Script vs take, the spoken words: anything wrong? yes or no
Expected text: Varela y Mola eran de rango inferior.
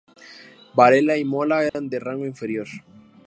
no